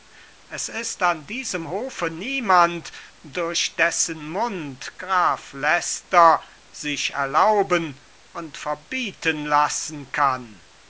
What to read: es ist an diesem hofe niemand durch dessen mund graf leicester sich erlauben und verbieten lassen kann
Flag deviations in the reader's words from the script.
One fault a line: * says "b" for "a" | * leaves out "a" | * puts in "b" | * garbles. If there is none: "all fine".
all fine